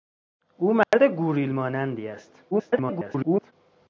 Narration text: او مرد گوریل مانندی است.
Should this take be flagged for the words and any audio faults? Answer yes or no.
yes